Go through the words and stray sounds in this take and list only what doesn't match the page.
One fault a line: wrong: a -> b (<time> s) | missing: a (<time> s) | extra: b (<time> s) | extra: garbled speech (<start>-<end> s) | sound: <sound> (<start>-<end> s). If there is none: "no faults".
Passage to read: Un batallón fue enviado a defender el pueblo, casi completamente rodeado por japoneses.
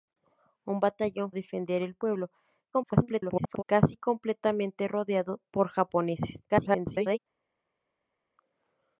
missing: fue enviado (1.3 s)
extra: garbled speech (2.7-3.6 s)
extra: garbled speech (6.5-7.2 s)